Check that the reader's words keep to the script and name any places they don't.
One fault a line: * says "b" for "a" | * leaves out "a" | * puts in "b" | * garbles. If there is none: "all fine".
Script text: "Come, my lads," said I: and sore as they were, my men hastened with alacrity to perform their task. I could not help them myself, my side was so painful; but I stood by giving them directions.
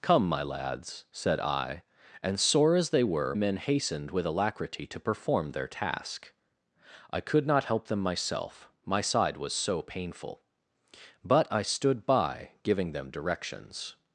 * leaves out "my"